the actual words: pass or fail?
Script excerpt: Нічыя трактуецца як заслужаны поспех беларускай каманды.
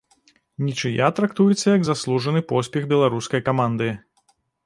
pass